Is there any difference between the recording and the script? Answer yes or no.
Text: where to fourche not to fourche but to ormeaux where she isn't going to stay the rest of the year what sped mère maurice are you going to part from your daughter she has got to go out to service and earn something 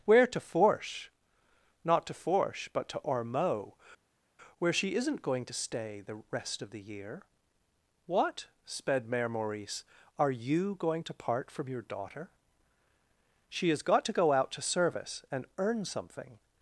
no